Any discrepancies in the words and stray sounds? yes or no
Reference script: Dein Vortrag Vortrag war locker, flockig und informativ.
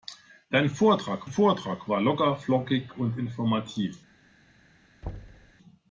yes